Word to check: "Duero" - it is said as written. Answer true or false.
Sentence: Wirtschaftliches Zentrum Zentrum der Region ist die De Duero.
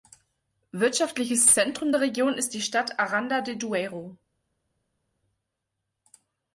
true